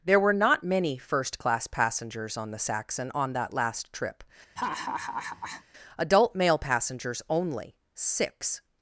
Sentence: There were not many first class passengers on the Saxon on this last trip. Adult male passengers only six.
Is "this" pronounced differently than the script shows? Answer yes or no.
yes